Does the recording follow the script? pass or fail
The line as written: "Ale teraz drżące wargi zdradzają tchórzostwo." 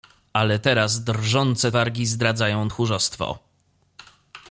pass